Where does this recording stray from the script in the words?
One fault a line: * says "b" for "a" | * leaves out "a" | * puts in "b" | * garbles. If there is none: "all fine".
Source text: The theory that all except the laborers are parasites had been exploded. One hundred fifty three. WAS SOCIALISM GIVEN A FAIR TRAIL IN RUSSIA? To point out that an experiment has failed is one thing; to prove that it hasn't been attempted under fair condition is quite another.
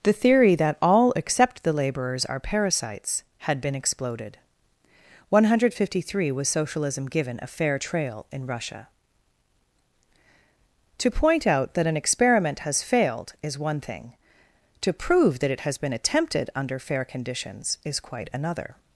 * says "has" for "hasn't"
* says "conditions" for "condition"